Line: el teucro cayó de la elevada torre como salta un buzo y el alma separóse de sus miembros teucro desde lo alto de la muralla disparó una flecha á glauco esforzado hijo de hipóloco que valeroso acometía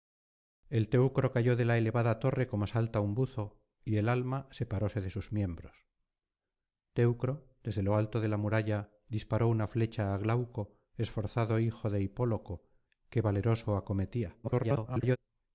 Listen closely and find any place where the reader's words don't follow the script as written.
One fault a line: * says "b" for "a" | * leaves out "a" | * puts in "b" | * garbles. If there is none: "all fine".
* garbles